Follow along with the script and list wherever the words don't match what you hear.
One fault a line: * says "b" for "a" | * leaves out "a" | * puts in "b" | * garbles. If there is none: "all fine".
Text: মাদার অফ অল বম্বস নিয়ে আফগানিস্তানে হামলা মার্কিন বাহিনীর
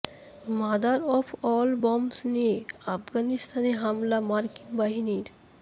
all fine